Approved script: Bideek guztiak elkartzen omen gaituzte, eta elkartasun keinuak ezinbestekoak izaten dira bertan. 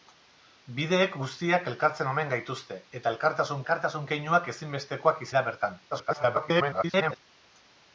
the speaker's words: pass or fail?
fail